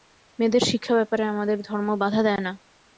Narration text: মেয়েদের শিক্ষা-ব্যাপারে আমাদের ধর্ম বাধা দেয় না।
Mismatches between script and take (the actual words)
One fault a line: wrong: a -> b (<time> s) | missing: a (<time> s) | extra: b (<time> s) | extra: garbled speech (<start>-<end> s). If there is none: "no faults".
no faults